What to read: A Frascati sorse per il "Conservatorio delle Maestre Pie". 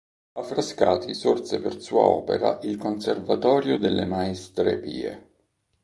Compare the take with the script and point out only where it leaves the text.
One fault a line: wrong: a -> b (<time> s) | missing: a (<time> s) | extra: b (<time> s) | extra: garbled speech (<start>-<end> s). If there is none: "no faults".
extra: sua opera (1.8 s)